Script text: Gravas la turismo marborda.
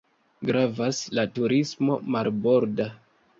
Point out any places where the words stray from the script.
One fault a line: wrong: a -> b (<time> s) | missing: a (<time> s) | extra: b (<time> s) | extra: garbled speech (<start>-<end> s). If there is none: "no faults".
no faults